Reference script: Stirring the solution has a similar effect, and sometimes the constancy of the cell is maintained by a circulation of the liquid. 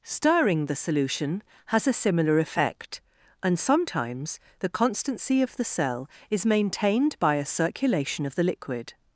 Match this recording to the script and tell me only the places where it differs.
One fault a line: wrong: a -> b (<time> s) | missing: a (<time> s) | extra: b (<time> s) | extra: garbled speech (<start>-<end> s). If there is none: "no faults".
no faults